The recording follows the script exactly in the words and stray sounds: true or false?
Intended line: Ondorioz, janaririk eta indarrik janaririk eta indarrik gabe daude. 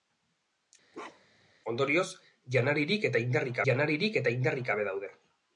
false